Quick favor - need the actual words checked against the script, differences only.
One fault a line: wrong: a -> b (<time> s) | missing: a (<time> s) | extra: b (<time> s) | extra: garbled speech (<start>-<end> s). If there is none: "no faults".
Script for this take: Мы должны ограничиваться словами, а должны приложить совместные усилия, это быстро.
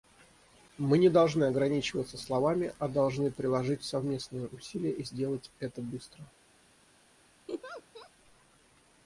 extra: не (1.0 s)
extra: и сделать (4.9 s)